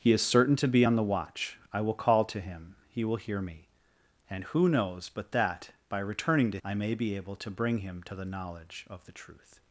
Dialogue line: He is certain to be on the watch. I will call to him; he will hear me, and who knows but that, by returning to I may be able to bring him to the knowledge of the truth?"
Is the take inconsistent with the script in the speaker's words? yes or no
no